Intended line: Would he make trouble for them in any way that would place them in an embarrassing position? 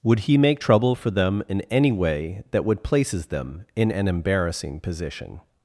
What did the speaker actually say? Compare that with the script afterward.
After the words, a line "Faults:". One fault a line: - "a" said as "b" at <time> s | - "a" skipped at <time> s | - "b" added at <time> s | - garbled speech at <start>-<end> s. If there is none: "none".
Would he make trouble for them in any way that would places them in an embarrassing position?
Faults:
- "place" said as "places" at 2.8 s